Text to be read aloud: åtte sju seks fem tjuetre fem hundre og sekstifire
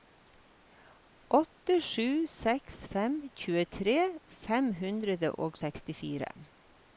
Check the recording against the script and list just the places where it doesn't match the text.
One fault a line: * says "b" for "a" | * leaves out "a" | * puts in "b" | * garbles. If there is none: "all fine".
all fine